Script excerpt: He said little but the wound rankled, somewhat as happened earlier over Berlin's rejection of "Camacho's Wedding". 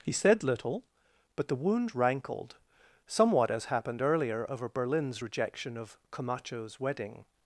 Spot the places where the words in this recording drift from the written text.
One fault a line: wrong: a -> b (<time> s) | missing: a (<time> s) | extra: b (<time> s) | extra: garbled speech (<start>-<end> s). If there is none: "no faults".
no faults